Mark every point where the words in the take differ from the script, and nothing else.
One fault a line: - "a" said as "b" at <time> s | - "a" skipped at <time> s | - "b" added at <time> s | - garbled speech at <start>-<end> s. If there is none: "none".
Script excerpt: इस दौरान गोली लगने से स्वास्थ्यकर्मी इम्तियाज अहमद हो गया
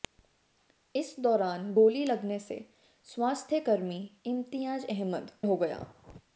none